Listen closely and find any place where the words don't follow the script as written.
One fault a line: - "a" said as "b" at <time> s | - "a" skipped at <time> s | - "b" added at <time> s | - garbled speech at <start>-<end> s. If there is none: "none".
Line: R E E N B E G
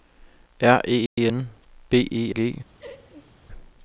none